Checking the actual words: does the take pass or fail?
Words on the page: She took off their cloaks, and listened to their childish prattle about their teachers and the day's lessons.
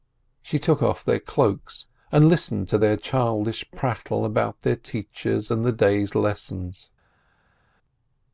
pass